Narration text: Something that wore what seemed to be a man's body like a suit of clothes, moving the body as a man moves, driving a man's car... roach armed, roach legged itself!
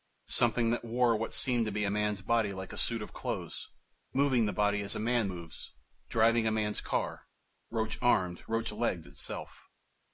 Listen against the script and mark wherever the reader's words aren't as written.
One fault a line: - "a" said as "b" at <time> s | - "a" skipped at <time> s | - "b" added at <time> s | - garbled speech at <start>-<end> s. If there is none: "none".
none